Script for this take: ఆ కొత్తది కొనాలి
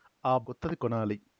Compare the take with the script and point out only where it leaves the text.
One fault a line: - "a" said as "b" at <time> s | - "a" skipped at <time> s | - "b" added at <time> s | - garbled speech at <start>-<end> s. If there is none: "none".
none